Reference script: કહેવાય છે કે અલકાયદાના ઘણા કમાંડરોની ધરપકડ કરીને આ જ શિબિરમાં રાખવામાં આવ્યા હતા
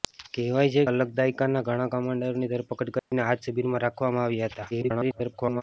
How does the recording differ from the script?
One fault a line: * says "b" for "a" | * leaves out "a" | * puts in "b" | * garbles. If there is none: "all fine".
* leaves out "કે"
* garbles